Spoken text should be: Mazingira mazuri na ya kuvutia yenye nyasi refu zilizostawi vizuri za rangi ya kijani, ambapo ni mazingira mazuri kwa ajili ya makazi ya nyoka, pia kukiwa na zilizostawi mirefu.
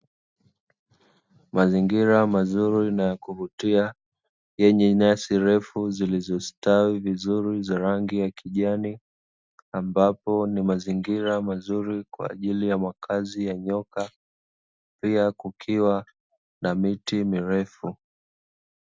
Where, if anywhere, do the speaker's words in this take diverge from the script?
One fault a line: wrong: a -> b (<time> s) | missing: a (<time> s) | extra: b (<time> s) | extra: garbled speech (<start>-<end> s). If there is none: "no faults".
wrong: zilizostawi -> miti (16.8 s)